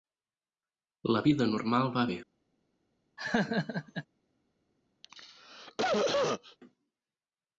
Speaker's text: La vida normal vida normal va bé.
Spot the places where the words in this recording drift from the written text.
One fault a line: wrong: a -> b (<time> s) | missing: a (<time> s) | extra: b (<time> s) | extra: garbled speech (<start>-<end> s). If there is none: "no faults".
missing: vida normal (1.9 s)